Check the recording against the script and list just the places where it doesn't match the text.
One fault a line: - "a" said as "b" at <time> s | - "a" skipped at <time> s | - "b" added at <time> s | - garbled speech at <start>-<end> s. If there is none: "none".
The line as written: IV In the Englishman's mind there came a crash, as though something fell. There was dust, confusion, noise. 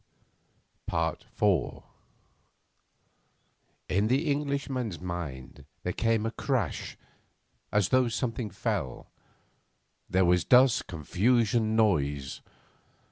none